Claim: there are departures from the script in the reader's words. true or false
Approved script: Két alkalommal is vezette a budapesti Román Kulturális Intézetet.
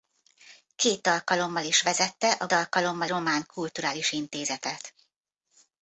true